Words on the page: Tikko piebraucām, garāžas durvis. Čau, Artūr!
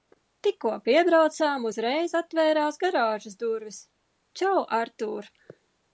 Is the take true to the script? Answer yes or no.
no